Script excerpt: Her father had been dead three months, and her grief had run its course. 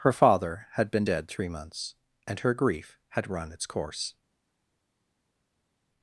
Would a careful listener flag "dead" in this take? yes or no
no